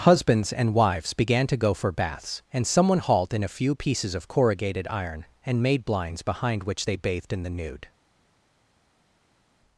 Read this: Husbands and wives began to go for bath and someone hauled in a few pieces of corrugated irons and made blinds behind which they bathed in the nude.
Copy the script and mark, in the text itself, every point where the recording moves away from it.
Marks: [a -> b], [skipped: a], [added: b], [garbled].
Husbands and wives began to go for [bath -> baths] and someone hauled in a few pieces of corrugated [irons -> iron] and made blinds behind which they bathed in the nude.